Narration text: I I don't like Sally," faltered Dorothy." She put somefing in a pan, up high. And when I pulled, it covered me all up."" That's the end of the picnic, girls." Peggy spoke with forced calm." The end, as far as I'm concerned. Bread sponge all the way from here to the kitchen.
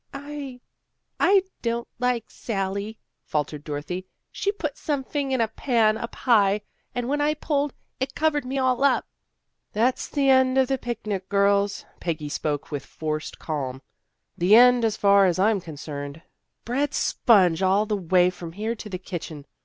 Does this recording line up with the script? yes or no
yes